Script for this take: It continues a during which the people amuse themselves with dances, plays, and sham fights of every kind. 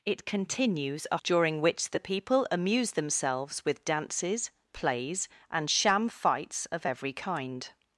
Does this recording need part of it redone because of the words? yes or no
no